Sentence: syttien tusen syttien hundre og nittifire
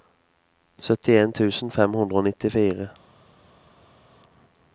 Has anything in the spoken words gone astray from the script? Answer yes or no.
yes